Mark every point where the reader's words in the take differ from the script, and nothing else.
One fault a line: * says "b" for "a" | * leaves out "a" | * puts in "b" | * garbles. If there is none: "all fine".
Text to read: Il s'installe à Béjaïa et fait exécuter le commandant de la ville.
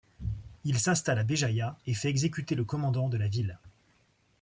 all fine